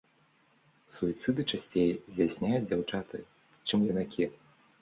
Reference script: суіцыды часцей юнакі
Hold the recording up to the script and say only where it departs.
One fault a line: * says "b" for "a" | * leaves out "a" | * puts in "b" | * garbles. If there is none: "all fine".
* puts in "здзяйсняюць дзяўчаты чым"